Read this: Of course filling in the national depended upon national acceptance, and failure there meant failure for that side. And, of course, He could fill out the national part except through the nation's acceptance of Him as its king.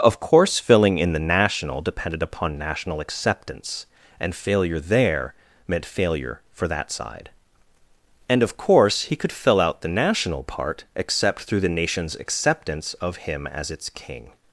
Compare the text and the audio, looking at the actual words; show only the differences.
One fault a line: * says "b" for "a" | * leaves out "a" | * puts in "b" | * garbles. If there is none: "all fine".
all fine